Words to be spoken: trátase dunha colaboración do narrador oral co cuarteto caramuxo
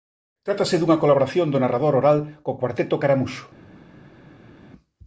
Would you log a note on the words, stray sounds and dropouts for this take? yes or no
no